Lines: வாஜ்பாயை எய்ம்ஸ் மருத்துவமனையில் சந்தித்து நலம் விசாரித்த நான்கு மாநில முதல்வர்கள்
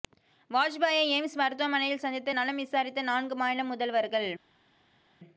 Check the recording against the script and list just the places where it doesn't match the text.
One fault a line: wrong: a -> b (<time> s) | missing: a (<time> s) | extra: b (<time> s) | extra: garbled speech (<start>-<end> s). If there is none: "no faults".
no faults